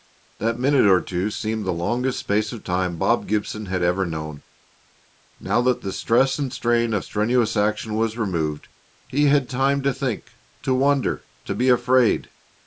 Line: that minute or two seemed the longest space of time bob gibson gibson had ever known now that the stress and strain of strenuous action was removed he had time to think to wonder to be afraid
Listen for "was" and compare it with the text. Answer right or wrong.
right